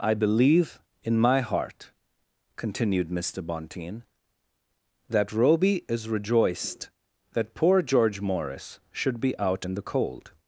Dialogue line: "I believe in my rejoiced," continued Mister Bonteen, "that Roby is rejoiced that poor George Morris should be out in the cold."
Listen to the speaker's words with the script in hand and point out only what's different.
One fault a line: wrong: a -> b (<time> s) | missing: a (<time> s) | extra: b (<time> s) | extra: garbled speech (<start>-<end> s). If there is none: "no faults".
wrong: rejoiced -> heart (1.4 s)